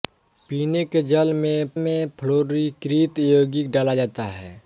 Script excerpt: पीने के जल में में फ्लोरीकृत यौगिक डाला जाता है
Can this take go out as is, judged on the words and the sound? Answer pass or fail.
pass